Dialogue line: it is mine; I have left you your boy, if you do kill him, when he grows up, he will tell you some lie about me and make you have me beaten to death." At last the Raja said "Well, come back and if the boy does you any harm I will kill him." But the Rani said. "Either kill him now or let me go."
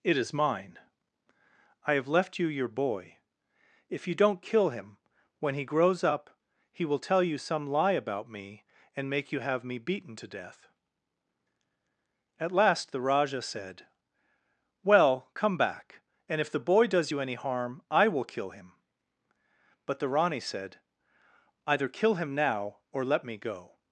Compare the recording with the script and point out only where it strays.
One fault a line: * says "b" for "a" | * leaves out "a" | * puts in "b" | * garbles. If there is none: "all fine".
* says "don't" for "do"